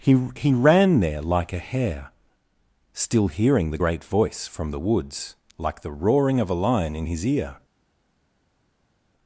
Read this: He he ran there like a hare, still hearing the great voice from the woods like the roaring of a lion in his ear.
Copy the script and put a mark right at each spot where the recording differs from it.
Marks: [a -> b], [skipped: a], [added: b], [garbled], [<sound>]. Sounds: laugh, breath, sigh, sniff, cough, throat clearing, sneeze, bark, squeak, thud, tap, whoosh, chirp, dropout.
He he ran there like a hare, still hearing the great voice from the woods like the roaring of a lion in his ear.